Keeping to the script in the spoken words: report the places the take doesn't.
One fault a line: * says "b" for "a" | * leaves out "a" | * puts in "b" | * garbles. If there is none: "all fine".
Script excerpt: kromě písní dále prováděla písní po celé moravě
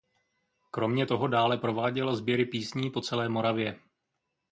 * says "toho" for "písní"
* puts in "sběry"